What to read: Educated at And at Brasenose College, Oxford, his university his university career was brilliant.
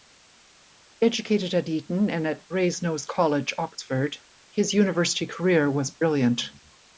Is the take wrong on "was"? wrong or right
right